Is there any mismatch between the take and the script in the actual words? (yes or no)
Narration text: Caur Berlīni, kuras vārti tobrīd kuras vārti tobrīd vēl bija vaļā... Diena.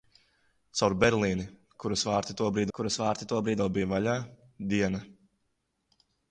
no